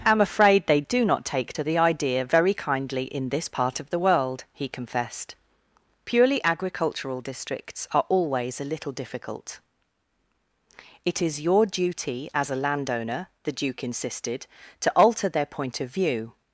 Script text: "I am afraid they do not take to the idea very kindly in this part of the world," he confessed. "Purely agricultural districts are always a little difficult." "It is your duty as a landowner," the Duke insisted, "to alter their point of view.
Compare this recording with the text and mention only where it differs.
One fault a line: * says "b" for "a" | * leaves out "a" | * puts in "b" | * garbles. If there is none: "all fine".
all fine